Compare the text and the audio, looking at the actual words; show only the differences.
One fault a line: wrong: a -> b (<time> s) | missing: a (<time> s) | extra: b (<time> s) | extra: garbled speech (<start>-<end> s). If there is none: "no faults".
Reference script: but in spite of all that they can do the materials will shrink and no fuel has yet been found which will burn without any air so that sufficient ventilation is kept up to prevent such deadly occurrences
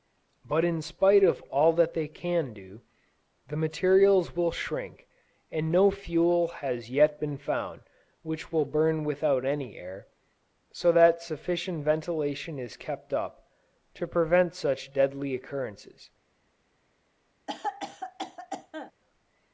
no faults